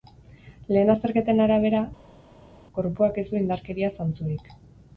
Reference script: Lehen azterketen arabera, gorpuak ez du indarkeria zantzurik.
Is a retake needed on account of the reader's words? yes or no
no